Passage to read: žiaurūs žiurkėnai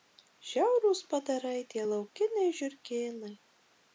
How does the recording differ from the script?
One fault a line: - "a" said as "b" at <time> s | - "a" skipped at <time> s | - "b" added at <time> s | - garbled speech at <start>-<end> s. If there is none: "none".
- "padarai tie laukiniai" added at 1.1 s